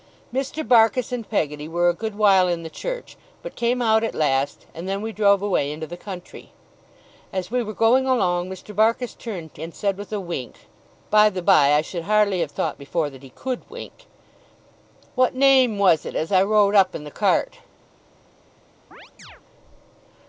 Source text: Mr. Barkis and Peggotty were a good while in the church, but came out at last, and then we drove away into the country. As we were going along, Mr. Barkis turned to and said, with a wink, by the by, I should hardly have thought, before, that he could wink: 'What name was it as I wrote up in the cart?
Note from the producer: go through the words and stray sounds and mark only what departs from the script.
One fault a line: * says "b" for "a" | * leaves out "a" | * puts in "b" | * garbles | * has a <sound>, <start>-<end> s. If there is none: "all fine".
* has a chirp, 18.9-19.4 s